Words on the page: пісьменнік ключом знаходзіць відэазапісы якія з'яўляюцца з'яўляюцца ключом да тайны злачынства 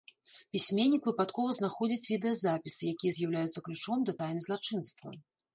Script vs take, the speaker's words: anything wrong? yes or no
yes